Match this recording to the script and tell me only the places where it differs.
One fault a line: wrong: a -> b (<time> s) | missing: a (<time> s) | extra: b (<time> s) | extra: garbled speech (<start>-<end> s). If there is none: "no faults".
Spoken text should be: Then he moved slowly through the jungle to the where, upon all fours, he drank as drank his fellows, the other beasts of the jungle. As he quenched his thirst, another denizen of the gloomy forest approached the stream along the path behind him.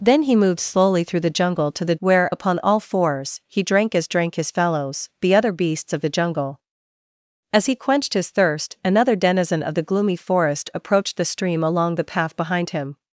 no faults